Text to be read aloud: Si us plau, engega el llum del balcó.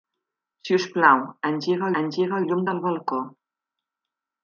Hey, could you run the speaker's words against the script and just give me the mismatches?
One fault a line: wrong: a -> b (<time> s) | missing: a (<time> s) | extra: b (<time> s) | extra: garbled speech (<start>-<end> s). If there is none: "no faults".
extra: engega (2.0 s)